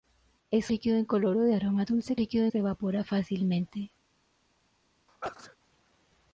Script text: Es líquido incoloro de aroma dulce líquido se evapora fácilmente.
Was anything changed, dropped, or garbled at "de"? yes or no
no